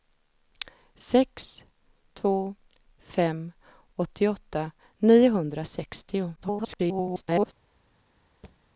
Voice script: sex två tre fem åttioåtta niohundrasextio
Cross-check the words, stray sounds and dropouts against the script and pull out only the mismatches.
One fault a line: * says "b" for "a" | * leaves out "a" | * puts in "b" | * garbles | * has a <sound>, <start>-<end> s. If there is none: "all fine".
* leaves out "tre"
* garbles
* has a thud, 8.4-8.6 s